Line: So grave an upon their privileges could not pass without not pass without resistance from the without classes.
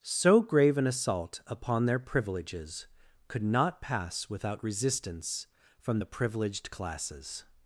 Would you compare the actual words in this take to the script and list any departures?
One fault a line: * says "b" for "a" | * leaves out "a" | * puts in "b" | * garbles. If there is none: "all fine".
* puts in "assault"
* leaves out "not pass without"
* says "privileged" for "without"